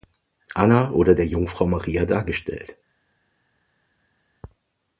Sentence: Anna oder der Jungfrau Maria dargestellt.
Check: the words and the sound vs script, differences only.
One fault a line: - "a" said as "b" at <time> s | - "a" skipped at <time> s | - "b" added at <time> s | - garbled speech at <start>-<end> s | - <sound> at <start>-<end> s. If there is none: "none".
none